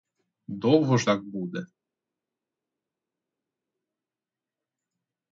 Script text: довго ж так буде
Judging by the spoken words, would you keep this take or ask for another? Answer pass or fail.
pass